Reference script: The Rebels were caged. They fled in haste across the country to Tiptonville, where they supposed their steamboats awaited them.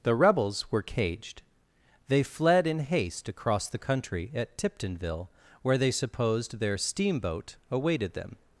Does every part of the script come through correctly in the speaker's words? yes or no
no